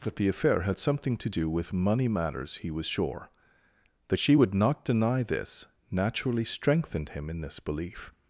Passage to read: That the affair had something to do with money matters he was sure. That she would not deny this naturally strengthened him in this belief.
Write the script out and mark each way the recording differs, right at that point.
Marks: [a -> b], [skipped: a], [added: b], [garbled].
That the affair had something to do with money matters he was sure. That she would not deny this naturally strengthened him in this belief.